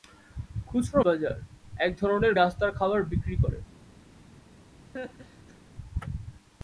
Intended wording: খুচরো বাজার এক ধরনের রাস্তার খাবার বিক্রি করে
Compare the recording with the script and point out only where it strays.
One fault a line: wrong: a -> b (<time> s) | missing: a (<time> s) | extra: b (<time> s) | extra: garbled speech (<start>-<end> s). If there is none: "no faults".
no faults